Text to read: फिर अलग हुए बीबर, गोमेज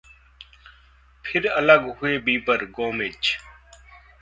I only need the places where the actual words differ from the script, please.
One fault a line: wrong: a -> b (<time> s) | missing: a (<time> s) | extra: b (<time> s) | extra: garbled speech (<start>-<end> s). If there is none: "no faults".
no faults